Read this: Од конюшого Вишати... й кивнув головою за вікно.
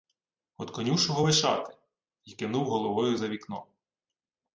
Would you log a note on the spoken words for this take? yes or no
no